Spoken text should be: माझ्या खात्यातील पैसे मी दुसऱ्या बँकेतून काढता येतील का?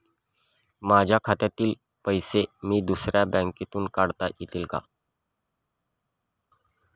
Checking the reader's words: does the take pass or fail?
pass